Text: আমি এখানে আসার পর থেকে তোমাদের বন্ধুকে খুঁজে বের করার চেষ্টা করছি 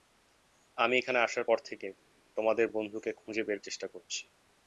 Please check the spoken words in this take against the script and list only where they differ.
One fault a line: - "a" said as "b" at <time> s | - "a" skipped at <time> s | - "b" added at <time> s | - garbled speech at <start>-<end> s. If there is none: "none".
- "করার" skipped at 3.6 s